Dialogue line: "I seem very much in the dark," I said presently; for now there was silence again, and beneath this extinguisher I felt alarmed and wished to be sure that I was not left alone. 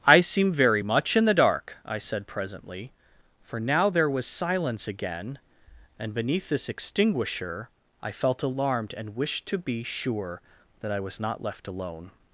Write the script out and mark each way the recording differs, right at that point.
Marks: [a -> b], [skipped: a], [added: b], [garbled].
"I seem very much in the dark," I said presently; for now there was silence again, and beneath this extinguisher I felt alarmed and wished to be sure that I was not left alone.